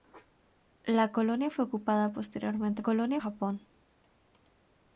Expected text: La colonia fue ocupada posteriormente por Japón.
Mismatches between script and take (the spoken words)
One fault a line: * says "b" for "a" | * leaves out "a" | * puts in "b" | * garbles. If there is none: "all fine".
* says "colonia" for "por"